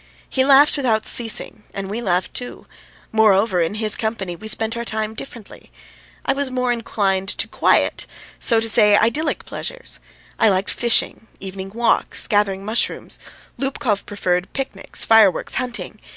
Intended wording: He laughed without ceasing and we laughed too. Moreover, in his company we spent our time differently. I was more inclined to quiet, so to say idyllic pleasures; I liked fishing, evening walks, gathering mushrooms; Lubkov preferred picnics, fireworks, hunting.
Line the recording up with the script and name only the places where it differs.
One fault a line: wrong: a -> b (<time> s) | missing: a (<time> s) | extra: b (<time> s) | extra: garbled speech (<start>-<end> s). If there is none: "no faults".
no faults